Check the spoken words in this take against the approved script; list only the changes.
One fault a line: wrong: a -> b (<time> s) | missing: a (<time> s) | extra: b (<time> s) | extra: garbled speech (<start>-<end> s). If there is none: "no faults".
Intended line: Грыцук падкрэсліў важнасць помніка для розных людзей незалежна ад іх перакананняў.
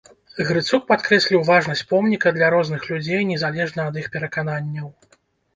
no faults